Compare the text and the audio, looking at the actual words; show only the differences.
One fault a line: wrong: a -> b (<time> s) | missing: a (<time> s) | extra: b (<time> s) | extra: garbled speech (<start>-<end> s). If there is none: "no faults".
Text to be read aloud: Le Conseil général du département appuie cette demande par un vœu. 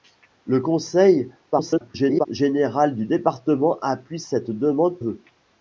extra: garbled speech (1.5-2.3 s)
missing: par un (5.0 s)